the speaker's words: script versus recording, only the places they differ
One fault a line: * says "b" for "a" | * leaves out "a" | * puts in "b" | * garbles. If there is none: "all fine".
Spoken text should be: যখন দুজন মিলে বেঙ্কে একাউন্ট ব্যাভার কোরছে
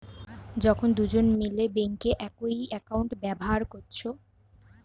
* puts in "একই"